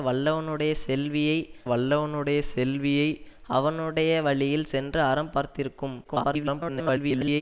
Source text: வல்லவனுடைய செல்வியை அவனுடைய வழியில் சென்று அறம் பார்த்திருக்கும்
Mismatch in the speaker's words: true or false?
true